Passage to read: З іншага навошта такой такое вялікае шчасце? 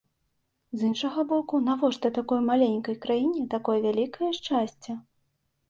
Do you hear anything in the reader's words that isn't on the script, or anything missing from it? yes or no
yes